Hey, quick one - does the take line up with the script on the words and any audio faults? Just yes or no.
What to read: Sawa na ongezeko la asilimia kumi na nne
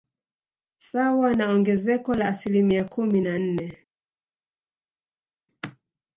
yes